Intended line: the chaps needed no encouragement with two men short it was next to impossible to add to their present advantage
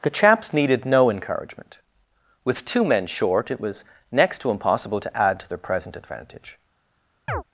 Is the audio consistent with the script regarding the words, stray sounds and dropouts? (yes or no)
no